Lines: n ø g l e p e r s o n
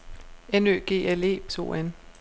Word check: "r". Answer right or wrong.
wrong